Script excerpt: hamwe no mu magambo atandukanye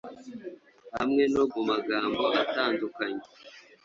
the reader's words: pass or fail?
pass